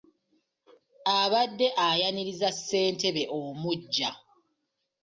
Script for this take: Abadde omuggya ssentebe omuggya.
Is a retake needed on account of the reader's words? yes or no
yes